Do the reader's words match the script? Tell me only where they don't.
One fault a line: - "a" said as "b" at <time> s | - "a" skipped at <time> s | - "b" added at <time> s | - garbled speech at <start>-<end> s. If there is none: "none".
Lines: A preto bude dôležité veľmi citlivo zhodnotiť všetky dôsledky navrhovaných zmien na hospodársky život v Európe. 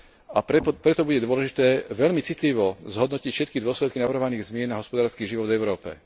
none